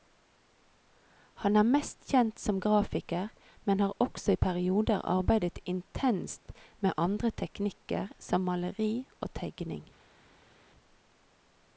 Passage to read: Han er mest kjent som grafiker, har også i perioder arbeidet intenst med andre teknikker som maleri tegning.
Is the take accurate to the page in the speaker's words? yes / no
no